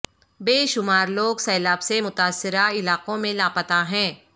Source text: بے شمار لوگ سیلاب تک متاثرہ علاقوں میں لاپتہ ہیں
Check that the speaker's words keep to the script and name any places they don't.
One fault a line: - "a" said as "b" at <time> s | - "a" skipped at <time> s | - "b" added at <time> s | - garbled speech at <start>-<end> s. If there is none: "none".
- "تک" said as "سے" at 1.8 s